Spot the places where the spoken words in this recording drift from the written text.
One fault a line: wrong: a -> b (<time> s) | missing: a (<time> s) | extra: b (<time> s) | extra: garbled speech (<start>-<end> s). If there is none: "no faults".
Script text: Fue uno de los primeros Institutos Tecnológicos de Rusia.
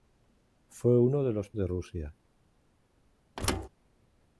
missing: primeros Institutos Tecnológicos (1.5 s)